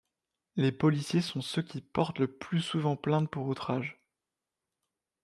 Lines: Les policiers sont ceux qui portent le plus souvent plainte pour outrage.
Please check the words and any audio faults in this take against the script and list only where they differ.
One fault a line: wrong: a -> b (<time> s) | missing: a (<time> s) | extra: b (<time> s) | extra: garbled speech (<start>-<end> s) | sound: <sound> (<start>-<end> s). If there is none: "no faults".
no faults